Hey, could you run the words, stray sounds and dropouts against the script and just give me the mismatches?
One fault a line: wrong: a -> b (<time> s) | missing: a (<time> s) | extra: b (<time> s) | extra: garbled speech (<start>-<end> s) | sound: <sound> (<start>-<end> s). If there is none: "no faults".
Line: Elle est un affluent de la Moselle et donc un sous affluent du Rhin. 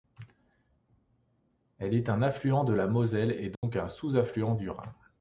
sound: dropout (3.5-3.6 s)